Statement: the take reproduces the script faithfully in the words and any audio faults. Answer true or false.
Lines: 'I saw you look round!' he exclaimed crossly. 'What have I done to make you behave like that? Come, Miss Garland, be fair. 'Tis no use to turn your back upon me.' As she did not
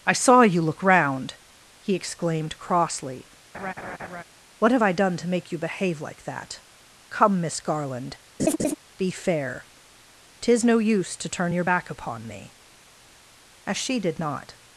false